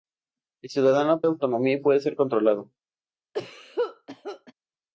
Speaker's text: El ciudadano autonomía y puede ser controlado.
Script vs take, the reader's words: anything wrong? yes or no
no